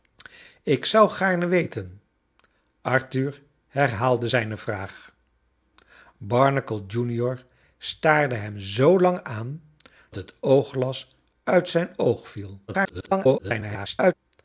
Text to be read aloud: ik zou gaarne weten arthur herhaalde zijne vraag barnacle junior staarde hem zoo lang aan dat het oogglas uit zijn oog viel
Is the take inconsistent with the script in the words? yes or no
yes